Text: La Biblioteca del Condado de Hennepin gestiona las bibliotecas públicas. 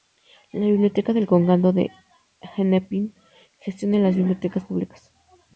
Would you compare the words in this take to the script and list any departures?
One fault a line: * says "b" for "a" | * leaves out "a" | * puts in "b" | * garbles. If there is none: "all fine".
all fine